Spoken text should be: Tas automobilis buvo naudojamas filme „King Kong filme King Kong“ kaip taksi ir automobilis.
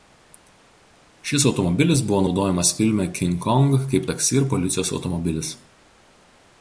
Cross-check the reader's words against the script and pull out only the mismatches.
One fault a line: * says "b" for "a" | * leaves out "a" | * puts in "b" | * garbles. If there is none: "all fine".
* says "Šis" for "Tas"
* leaves out "filme King Kong"
* puts in "policijos"